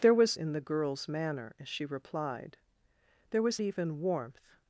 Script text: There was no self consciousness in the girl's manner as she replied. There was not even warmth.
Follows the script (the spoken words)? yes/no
no